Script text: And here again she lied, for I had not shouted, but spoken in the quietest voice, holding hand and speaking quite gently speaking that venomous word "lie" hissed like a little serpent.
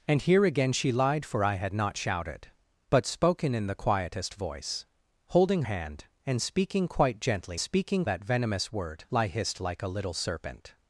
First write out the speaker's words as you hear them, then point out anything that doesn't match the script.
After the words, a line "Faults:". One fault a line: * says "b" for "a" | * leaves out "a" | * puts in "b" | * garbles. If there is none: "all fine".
And here again she lied, for I had not shouted, but spoken in the quietest voice, holding hand and speaking quite gently speaking that venomous word "lie" hissed like a little serpent.
Faults:
all fine